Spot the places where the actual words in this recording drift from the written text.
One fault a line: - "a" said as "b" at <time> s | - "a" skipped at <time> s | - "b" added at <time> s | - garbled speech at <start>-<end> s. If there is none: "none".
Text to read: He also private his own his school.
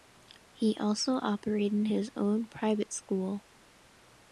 - "private" said as "operated" at 1.2 s
- "his" said as "private" at 2.5 s